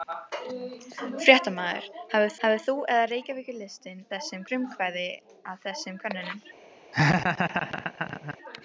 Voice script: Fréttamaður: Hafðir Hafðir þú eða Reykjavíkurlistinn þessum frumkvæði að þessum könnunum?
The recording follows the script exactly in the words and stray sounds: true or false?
false